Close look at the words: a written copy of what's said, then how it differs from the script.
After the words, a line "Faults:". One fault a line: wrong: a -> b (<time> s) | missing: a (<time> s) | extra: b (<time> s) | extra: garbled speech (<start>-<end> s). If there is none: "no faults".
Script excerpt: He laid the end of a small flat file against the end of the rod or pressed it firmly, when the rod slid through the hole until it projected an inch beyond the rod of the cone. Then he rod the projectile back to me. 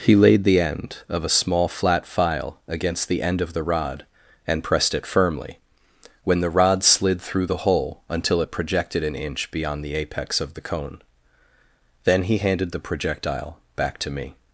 He laid the end of a small flat file against the end of the rod and pressed it firmly, when the rod slid through the hole until it projected an inch beyond the apex of the cone. Then he handed the projectile back to me.
Faults:
wrong: or -> and (4.5 s)
wrong: rod -> apex (9.9 s)
wrong: rod -> handed (12.4 s)